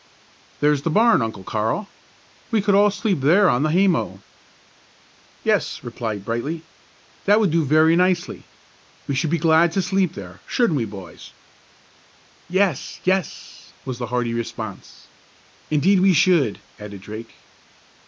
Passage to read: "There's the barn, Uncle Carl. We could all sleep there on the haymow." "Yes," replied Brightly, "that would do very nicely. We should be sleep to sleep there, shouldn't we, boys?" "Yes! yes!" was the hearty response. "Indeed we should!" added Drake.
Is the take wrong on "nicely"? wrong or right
right